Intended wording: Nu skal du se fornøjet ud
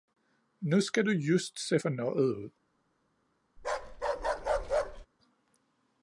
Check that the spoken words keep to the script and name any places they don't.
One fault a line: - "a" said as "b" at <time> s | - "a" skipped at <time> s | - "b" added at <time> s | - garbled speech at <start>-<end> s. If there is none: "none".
- "just" added at 1.1 s